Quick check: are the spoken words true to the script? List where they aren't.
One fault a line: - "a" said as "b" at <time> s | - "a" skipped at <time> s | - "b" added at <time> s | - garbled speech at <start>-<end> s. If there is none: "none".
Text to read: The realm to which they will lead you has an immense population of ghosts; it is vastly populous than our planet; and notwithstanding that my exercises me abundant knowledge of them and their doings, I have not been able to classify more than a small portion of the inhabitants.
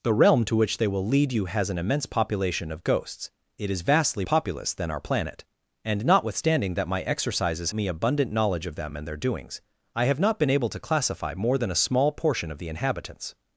none